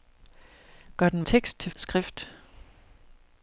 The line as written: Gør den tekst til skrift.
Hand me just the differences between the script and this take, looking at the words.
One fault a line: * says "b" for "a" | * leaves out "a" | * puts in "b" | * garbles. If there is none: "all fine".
all fine